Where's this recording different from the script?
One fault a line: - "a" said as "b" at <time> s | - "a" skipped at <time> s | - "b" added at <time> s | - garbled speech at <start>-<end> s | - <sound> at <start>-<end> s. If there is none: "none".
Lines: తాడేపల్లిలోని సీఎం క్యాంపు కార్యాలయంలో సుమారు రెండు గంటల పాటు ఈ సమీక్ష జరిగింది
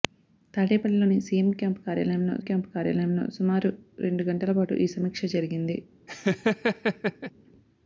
- "క్యాంపు కార్యాలయంలో" added at 2.4 s
- laugh at 6.1-7.3 s